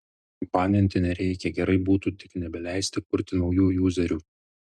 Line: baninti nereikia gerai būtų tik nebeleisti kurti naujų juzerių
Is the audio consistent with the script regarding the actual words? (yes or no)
yes